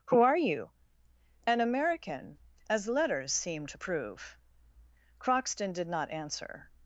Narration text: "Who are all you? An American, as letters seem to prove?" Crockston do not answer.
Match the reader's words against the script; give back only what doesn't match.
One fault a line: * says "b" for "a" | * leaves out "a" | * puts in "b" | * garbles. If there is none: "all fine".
* leaves out "all"
* says "did" for "do"